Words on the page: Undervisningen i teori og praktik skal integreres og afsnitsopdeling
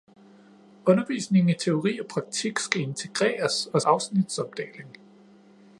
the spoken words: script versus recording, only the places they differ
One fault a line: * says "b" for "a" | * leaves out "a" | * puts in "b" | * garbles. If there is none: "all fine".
all fine